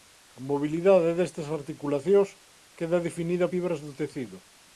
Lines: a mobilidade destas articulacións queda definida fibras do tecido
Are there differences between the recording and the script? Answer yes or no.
no